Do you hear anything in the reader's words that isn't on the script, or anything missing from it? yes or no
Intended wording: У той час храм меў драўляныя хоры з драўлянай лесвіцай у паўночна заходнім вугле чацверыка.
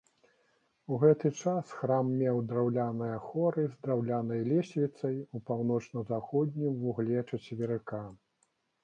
yes